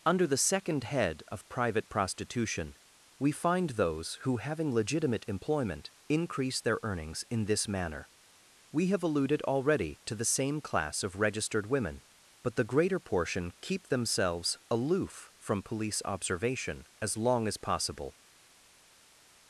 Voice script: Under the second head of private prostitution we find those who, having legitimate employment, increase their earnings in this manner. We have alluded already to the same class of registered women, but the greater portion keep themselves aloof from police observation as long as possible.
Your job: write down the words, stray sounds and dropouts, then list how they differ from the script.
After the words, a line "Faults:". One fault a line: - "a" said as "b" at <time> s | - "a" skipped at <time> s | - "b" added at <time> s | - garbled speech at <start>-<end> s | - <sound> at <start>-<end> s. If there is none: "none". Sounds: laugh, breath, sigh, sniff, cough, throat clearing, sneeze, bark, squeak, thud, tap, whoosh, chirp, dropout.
Under the second head of private prostitution we find those who, having legitimate employment, increase their earnings in this manner. We have alluded already to the same class of registered women, but the greater portion keep themselves aloof from police observation as long as possible.
Faults:
none